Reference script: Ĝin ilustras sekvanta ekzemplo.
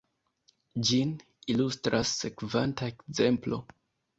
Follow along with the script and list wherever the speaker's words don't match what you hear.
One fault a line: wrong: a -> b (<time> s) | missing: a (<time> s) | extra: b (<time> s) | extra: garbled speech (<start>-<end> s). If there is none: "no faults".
no faults